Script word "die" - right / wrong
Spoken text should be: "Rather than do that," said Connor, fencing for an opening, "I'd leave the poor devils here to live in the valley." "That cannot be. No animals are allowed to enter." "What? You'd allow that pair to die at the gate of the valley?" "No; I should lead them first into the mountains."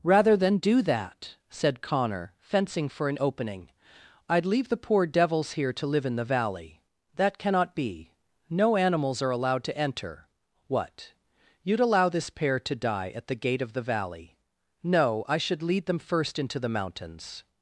right